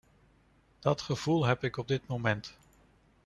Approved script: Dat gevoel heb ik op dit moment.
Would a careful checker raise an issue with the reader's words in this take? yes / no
no